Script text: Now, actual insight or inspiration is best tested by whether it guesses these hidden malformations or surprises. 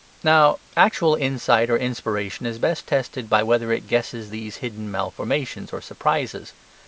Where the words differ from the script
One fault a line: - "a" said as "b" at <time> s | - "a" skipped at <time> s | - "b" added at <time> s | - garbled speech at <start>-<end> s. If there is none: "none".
none